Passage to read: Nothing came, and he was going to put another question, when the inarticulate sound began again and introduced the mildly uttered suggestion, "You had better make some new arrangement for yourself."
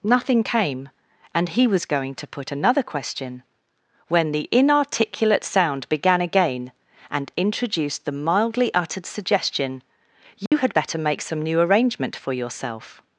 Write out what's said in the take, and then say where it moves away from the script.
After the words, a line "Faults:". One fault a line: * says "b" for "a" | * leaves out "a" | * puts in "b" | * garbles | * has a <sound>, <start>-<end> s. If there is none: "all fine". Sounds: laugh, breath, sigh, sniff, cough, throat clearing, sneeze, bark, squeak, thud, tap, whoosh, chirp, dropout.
Nothing came, and he was going to put another question, when the inarticulate sound began again and introduced the mildly uttered suggestion, "You had better make some new arrangement for yourself."
Faults:
* has a dropout, 10.5-10.5 s